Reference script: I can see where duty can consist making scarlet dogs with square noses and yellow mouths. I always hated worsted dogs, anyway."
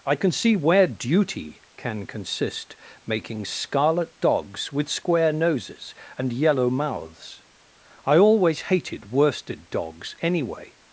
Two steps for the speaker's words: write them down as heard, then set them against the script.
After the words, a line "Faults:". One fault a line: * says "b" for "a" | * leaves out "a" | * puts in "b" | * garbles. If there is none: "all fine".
I can see where duty can consist making scarlet dogs with square noses and yellow mouths. I always hated worsted dogs, anyway."
Faults:
all fine